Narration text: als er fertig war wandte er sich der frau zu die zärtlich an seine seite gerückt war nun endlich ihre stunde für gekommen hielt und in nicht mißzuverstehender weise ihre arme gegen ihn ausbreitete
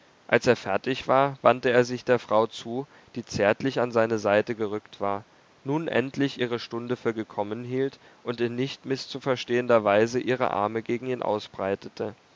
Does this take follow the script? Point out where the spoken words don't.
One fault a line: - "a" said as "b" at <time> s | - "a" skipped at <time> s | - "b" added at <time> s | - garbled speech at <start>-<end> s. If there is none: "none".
none